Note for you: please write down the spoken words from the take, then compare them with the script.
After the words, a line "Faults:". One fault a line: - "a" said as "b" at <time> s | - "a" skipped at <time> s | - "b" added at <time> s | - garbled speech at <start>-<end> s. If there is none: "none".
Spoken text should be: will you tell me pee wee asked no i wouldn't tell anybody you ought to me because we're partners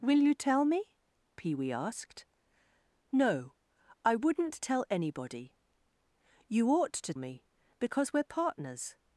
will you tell me pee wee asked no i wouldn't tell anybody you ought to me because we're partners
Faults:
none